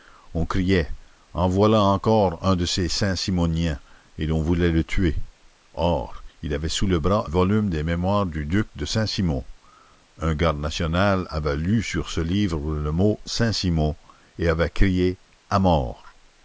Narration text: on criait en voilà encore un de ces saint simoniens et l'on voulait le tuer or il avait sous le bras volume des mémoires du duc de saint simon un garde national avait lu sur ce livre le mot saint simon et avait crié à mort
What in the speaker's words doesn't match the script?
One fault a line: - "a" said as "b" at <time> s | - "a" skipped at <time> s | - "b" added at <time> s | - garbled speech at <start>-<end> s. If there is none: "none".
none